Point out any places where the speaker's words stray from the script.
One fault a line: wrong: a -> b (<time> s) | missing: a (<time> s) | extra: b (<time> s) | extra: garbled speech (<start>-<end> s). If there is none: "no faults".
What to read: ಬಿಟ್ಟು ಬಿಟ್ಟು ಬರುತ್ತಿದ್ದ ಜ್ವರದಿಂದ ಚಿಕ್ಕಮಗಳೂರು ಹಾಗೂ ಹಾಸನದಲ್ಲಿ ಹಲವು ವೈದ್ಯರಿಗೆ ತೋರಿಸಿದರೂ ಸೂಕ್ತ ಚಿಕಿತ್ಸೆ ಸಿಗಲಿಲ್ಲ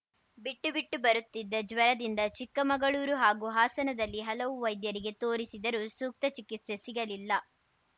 no faults